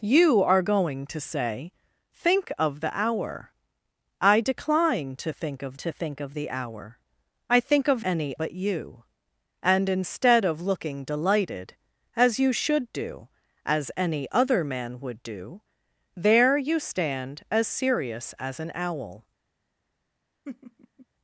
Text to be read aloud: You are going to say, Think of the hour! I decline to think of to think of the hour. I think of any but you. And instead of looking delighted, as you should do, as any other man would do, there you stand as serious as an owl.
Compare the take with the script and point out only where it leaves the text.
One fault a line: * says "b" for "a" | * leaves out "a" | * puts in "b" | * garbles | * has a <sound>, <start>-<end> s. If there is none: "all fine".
* has a laugh, 20.5-21.1 s